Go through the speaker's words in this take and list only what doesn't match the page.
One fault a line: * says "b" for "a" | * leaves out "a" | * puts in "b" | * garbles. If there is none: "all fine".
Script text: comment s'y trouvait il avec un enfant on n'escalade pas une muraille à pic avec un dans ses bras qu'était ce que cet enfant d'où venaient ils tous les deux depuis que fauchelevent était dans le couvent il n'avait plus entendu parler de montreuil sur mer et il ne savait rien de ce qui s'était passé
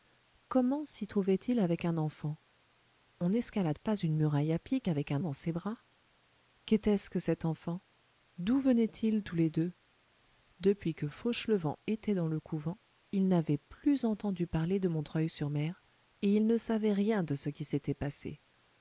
all fine